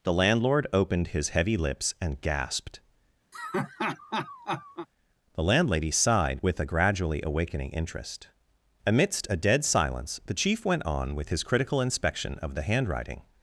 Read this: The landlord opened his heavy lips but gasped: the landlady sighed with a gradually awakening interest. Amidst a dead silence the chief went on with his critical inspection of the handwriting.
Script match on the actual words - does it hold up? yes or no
no